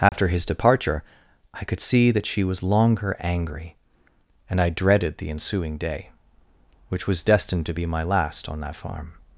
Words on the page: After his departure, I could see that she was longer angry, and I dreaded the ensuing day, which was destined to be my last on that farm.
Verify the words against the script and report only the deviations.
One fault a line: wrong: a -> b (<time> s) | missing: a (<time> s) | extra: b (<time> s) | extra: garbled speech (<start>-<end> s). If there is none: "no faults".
no faults